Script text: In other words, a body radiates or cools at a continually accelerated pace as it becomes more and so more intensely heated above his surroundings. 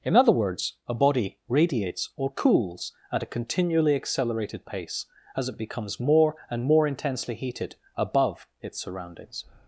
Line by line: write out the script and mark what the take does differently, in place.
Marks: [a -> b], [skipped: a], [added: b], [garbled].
In other words, a body radiates or cools at a continually accelerated pace as it becomes more and [skipped: so] more intensely heated above [his -> its] surroundings.